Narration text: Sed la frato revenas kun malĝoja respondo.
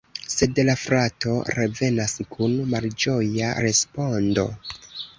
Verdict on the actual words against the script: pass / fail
pass